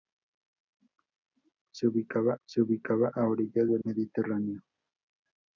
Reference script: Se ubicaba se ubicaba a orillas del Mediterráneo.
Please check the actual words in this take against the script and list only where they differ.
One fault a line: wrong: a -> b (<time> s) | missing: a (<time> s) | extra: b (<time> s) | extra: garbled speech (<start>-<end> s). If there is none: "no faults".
no faults